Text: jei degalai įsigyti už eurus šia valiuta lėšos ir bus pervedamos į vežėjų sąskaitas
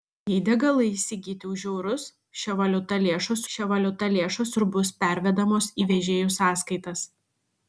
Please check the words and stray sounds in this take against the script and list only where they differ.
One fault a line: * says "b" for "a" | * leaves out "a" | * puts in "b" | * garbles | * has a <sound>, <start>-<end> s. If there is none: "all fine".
* puts in "šia valiuta lėšos"